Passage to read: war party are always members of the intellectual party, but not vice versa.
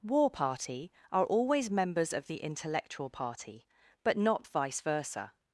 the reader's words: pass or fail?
pass